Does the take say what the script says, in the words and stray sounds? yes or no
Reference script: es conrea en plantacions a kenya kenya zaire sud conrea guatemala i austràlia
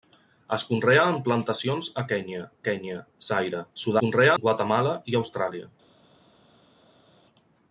yes